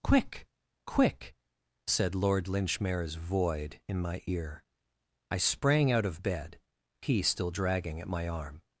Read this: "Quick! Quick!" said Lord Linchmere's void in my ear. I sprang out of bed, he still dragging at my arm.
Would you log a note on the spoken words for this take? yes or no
no